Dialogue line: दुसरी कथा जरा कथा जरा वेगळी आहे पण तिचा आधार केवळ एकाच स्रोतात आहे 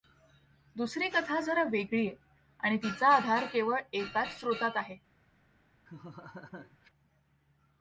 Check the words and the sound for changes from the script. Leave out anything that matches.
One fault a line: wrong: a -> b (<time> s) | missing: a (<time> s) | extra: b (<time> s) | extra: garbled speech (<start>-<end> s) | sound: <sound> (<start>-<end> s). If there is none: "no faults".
missing: कथा जरा (1.6 s)
wrong: पण -> आणि (2.6 s)
sound: laugh (5.9-6.9 s)